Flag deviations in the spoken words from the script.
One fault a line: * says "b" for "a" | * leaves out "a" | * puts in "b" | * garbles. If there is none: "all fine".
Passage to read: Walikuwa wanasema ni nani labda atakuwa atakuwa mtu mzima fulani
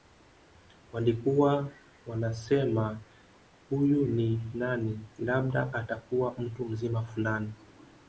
* puts in "huyu"
* leaves out "atakuwa"